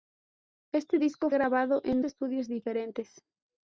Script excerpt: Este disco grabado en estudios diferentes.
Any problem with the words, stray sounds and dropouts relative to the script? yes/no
no